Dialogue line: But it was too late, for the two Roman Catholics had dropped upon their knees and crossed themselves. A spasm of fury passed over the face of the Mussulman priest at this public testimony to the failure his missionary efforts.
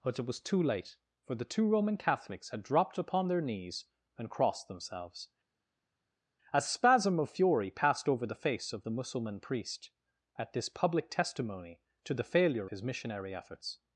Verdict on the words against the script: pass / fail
pass